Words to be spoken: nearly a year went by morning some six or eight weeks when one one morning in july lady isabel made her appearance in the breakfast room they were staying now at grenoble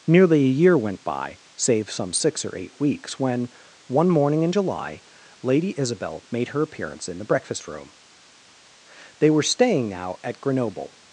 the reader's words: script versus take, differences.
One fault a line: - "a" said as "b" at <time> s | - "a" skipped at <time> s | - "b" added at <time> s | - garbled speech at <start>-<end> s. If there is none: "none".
- "morning" said as "save" at 1.6 s
- "one" skipped at 4.1 s